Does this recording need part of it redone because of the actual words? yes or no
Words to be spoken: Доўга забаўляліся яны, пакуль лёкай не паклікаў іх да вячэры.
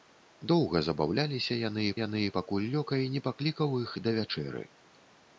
yes